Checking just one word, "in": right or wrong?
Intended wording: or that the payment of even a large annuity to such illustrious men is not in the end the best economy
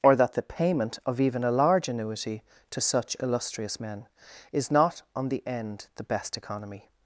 wrong